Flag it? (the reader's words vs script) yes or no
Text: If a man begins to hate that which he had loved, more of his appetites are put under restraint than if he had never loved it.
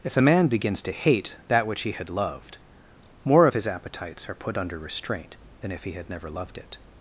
no